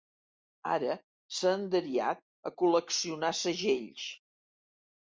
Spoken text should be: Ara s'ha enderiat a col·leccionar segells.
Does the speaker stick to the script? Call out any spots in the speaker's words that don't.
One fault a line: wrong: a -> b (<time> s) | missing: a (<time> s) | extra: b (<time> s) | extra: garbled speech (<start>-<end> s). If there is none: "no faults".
no faults